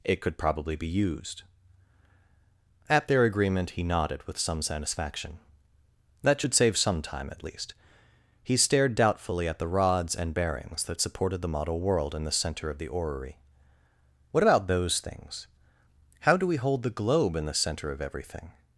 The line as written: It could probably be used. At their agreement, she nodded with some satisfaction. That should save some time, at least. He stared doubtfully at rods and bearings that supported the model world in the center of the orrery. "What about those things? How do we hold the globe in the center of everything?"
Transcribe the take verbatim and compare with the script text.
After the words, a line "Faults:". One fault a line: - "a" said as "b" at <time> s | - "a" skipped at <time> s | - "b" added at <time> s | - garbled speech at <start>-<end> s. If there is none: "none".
It could probably be used. At their agreement, he nodded with some satisfaction. That should save some time, at least. He stared doubtfully at the rods and bearings that supported the model world in the center of the orrery. "What about those things? How do we hold the globe in the center of everything?"
Faults:
- "she" said as "he" at 3.7 s
- "the" added at 9.6 s